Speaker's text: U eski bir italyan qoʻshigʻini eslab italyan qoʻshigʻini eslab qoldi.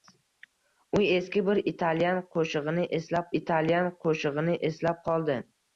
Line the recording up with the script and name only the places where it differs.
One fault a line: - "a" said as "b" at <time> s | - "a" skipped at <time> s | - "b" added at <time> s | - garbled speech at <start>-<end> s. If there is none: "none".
none